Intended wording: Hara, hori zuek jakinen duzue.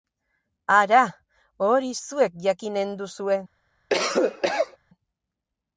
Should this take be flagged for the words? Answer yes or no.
no